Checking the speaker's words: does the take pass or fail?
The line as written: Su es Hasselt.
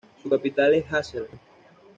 fail